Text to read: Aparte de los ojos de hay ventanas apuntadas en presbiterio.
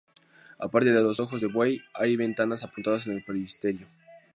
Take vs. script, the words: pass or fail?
fail